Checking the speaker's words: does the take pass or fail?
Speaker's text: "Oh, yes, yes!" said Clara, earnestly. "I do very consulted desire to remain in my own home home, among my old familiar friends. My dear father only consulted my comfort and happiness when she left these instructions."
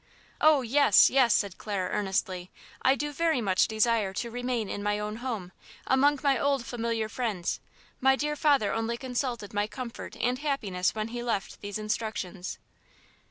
fail